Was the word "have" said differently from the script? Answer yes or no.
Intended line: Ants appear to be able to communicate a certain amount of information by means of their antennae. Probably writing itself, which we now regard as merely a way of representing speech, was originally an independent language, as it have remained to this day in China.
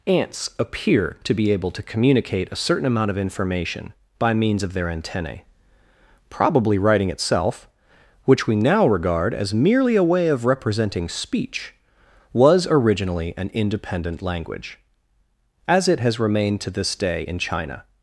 yes